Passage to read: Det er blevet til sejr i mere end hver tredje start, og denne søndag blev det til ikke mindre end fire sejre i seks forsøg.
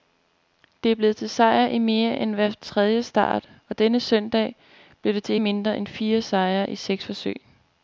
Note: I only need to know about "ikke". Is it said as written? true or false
false